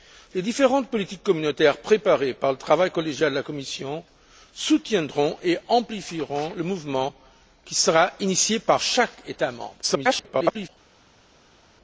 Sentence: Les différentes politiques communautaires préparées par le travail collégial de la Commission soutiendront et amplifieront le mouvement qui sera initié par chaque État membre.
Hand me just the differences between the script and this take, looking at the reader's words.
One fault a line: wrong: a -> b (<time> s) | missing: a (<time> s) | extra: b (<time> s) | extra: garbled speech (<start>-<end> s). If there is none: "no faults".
extra: garbled speech (9.8-10.7 s)